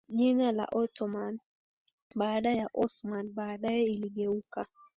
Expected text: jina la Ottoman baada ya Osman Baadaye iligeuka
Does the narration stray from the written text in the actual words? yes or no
no